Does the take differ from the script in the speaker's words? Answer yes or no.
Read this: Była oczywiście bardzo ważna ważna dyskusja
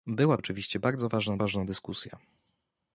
no